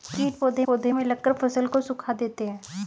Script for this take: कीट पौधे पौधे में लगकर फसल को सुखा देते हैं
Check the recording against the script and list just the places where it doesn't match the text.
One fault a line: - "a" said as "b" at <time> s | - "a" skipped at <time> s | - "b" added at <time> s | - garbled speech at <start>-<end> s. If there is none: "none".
none